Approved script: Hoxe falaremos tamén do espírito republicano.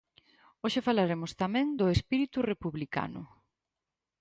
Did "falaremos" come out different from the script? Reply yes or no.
no